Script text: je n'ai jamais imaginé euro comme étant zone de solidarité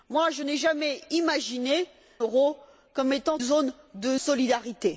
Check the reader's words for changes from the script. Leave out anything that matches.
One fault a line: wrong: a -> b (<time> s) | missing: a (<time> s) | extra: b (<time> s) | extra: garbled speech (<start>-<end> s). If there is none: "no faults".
no faults